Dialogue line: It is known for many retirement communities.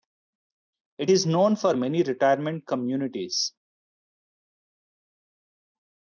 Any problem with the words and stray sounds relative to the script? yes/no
no